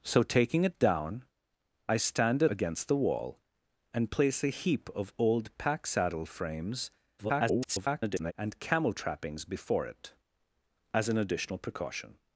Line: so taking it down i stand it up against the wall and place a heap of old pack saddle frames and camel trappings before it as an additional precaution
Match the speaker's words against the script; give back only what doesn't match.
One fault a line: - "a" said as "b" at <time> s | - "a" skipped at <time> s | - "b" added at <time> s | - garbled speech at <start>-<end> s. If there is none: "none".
- "up" skipped at 2.5 s
- garbled speech at 7.2-8.3 s